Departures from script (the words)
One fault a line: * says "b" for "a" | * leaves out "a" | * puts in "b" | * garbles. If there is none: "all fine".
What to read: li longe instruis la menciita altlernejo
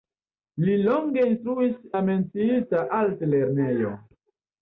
all fine